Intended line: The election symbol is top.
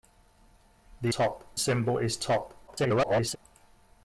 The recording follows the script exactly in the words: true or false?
false